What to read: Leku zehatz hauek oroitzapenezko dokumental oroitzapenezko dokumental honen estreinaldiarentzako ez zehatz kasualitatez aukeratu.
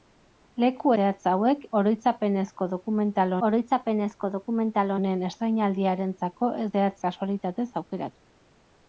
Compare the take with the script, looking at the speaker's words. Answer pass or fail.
pass